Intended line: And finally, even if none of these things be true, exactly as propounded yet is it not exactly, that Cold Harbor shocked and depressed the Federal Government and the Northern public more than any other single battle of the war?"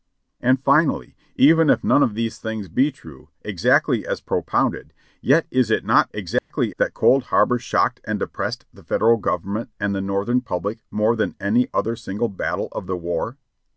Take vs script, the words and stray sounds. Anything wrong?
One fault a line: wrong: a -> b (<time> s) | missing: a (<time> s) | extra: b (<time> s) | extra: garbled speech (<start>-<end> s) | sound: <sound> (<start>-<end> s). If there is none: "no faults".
sound: dropout (6.4-6.5 s)